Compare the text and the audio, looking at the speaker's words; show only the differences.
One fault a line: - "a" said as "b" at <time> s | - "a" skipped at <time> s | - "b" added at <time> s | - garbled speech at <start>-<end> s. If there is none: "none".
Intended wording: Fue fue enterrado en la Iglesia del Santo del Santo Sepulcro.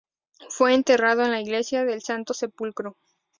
- "fue" skipped at 0.7 s
- "del Santo" skipped at 2.3 s